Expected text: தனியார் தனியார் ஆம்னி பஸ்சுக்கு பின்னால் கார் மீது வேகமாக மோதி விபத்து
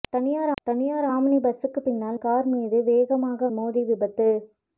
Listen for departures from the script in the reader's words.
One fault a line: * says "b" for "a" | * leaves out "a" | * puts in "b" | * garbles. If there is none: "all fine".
all fine